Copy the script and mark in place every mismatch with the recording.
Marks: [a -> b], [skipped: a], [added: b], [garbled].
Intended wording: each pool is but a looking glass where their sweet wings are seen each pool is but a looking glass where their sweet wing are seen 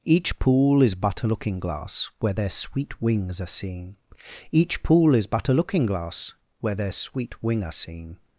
each pool is but a looking glass where their sweet wings are seen each pool is but a looking glass where their sweet wing are seen